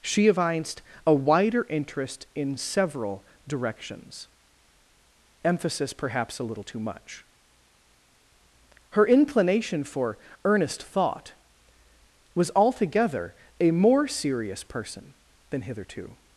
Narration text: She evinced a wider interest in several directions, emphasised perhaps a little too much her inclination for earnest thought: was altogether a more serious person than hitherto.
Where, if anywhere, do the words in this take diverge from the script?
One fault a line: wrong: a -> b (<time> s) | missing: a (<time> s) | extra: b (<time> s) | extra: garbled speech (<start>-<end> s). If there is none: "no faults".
wrong: emphasised -> emphasis (5.4 s)